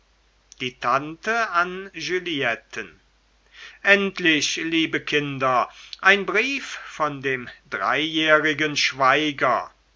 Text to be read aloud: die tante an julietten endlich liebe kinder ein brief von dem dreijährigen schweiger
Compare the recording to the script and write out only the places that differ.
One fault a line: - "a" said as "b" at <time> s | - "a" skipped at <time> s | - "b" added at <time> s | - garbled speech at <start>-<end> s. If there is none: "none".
none